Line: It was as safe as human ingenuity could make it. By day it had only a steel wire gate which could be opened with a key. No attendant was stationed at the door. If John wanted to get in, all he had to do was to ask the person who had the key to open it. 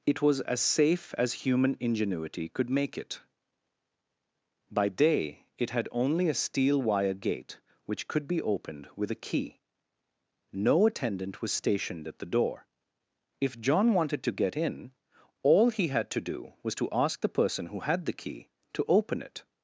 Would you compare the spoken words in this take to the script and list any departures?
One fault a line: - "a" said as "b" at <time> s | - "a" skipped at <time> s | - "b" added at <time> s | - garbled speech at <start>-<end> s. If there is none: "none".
none